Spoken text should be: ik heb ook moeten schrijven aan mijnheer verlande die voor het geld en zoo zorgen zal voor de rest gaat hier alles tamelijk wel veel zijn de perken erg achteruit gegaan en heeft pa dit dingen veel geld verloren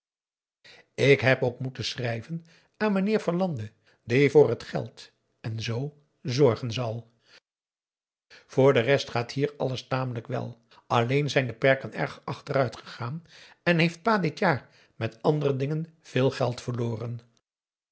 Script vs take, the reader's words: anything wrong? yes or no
yes